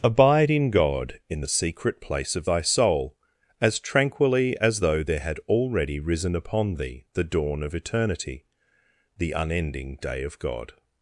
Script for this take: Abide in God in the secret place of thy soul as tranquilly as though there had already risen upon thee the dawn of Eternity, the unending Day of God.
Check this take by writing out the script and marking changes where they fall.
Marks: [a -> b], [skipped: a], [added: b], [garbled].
Abide in God in the secret place of thy soul as tranquilly as though there had already risen upon thee the dawn of Eternity, the unending Day of God.